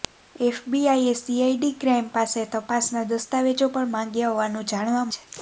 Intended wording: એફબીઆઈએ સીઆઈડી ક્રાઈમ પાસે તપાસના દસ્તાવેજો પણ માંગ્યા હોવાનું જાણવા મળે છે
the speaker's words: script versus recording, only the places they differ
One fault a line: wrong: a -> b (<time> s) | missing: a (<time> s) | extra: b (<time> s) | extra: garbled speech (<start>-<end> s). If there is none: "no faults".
missing: મળે (5.1 s)